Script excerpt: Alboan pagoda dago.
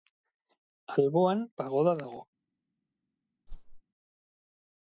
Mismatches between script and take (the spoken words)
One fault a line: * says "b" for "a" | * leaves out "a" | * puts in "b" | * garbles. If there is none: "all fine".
all fine